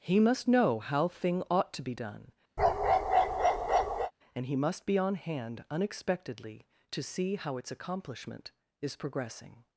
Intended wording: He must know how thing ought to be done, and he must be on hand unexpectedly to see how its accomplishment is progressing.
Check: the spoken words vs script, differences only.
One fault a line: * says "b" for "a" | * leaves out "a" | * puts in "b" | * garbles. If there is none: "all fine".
all fine